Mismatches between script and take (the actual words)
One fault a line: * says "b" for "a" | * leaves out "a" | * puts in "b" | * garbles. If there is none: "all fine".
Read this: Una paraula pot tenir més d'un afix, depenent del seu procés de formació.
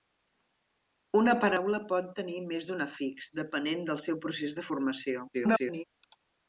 * garbles